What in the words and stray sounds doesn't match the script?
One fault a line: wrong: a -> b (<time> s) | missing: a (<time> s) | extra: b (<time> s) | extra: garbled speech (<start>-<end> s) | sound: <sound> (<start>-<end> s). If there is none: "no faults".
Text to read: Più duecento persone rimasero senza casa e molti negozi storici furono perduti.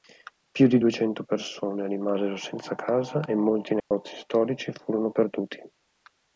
extra: di (0.7 s)
sound: dropout (3.8-3.9 s)